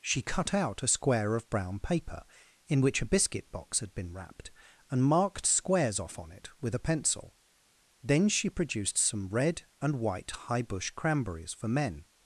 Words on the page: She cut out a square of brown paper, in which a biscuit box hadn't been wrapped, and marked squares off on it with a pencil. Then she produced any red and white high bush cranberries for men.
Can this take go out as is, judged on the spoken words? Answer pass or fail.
fail